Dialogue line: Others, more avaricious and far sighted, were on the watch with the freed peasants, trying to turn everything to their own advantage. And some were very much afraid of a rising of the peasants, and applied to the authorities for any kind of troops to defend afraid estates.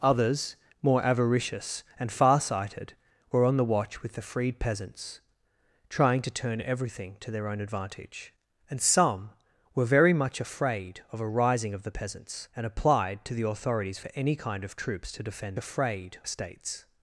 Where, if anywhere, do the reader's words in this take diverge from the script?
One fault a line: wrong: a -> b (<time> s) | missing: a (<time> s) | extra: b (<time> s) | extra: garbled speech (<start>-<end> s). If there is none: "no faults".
no faults